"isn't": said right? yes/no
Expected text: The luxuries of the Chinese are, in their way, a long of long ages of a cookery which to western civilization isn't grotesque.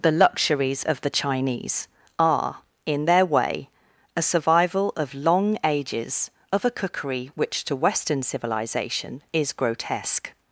no